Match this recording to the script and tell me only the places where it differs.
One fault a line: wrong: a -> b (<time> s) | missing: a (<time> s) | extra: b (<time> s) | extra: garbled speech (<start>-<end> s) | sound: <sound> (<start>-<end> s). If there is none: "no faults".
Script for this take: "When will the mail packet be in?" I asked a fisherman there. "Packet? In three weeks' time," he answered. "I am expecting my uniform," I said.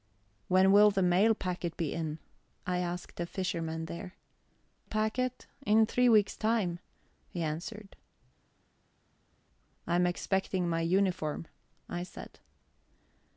no faults